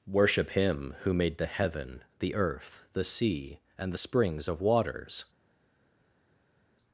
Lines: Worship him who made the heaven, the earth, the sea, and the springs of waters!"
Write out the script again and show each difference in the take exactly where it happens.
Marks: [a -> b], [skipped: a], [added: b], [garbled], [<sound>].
Worship him who made the heaven, the earth, the sea, and the springs of waters!"